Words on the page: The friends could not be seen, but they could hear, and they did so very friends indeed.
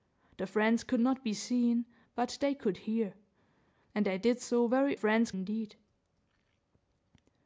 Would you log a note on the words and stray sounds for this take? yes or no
no